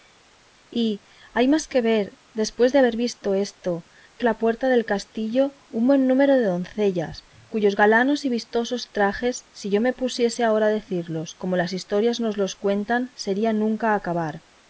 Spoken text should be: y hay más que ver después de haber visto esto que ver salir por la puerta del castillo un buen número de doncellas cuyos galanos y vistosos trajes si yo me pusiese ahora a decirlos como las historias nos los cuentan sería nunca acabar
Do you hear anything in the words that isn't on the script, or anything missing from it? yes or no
yes